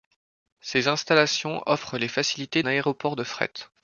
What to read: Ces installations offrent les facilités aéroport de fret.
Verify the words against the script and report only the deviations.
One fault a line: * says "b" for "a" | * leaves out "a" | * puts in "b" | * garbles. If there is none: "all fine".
all fine